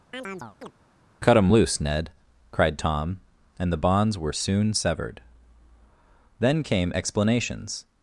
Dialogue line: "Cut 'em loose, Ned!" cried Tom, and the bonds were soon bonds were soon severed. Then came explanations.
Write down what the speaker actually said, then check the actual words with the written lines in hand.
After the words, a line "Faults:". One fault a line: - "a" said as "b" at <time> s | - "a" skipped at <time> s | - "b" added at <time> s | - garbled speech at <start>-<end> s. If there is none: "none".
"Cut 'em loose, Ned!" cried Tom, and the bonds were soon severed. Then came explanations.
Faults:
- "bonds were soon" skipped at 4.7 s